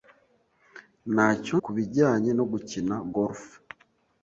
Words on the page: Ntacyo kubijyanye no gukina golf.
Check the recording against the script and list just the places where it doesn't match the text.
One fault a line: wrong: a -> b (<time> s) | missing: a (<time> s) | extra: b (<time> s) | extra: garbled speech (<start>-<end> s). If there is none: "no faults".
no faults